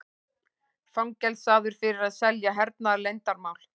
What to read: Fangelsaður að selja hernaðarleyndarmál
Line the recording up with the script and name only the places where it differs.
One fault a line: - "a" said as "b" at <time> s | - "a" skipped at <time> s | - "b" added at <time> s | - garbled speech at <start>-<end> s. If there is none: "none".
- "fyrir" added at 1.8 s